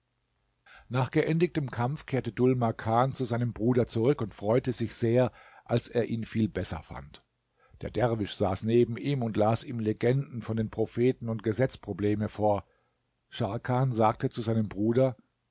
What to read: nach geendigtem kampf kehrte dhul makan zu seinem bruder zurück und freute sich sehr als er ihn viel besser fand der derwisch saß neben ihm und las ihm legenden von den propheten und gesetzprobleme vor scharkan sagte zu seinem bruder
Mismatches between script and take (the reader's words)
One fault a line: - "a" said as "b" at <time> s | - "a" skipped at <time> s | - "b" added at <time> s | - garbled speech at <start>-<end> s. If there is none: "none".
none